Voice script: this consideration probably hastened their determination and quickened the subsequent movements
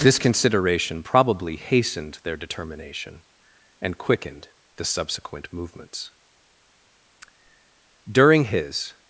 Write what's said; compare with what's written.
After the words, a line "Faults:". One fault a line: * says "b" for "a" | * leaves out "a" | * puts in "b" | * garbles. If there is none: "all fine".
this consideration probably hastened their determination and quickened the subsequent movements during his
Faults:
* puts in "during his"